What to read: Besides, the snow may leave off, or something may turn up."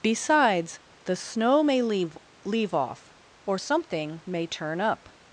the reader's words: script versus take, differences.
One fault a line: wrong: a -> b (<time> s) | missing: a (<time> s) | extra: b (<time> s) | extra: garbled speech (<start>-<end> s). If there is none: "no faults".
extra: leave (2.4 s)